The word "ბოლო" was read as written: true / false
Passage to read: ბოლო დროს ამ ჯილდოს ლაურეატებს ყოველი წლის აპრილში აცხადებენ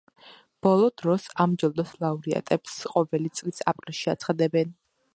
true